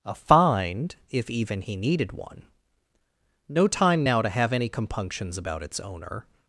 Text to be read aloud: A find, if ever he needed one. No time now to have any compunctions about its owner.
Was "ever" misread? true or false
true